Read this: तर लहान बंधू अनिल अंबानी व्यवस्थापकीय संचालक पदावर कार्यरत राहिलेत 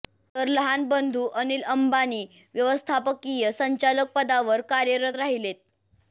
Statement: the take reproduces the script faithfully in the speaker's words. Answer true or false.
true